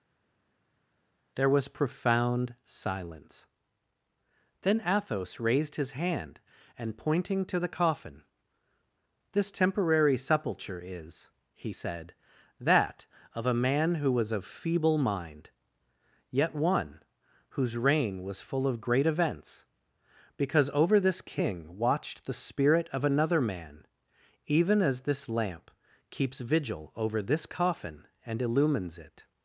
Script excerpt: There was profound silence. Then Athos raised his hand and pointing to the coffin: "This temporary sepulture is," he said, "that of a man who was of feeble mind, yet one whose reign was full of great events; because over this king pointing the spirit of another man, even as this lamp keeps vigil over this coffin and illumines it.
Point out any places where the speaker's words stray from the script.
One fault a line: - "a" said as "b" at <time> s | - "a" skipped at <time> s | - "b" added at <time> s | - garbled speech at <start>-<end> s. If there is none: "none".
- "pointing" said as "watched" at 21.8 s